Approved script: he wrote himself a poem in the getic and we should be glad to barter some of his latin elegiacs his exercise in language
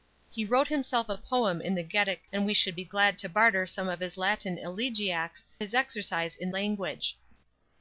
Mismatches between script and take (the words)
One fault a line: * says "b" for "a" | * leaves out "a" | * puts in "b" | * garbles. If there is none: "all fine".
all fine